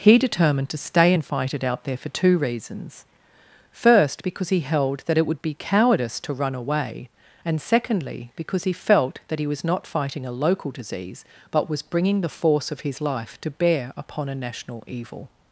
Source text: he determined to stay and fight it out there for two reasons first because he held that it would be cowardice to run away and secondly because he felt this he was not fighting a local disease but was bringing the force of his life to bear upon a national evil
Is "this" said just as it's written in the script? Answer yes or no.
no